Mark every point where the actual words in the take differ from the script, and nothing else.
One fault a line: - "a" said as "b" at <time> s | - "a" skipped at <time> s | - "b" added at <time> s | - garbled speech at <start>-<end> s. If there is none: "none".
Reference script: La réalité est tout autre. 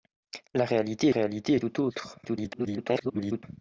- "réalité" added at 1.1 s
- garbled speech at 2.2-3.4 s